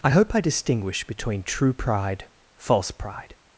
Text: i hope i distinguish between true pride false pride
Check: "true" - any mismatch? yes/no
no